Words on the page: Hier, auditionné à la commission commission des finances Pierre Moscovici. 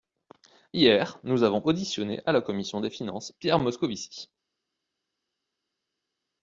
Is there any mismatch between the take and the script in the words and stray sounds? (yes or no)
yes